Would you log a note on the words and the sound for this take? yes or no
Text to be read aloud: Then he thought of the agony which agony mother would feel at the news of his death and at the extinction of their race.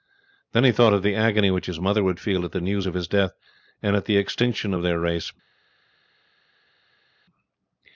yes